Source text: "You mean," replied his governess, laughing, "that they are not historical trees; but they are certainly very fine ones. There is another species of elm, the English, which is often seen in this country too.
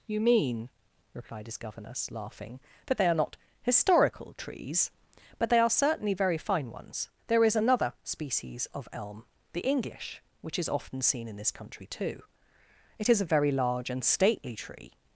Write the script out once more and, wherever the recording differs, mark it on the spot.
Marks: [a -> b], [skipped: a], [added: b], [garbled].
"You mean," replied his governess, laughing, "that they are not historical trees; but they are certainly very fine ones. There is another species of elm, the English, which is often seen in this country too. [added: It is a very large and stately tree]